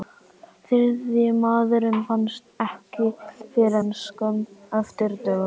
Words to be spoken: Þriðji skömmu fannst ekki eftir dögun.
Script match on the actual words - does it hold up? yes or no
no